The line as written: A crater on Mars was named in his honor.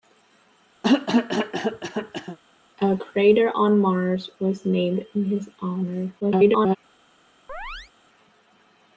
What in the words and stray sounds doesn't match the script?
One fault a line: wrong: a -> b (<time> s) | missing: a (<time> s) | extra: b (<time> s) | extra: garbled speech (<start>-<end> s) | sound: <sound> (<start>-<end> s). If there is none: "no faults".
sound: cough (0.8-2.4 s)
extra: garbled speech (6.2-6.8 s)
sound: chirp (7.5-7.9 s)